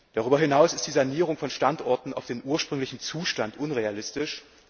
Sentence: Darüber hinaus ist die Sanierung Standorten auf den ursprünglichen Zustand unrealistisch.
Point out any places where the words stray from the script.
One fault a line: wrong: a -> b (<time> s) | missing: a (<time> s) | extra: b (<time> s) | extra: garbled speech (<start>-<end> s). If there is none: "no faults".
extra: von (1.4 s)